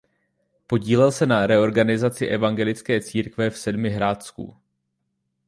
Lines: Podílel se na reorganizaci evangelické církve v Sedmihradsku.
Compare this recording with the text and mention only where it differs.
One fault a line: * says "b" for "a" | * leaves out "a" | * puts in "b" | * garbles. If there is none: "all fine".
all fine